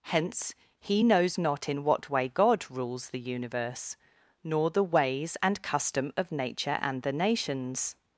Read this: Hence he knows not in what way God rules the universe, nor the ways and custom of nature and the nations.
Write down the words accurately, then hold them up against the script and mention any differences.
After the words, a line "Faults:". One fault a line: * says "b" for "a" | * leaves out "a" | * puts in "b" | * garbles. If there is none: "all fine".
Hence he knows not in what way God rules the universe, nor the ways and custom of nature and the nations.
Faults:
all fine